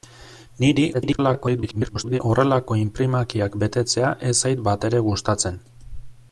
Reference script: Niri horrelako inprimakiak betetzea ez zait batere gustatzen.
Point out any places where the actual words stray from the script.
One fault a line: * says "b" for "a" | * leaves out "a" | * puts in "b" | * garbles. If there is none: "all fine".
* garbles